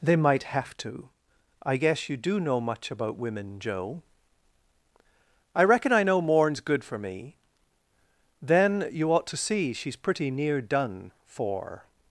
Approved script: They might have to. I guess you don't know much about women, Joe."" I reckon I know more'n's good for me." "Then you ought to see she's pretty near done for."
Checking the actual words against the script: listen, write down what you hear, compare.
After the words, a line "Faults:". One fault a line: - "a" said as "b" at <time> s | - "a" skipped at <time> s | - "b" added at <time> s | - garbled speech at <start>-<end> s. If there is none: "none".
They might have to. I guess you do know much about women, Joe."" I reckon I know more'n's good for me." "Then you ought to see she's pretty near done for."
Faults:
- "don't" said as "do" at 2.2 s